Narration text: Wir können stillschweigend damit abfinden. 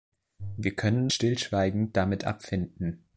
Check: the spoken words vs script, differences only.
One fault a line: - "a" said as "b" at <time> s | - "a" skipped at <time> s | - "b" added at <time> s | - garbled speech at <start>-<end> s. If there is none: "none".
none